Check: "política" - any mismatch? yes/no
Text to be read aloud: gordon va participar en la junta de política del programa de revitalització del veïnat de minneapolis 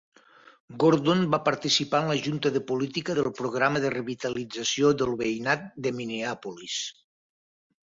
no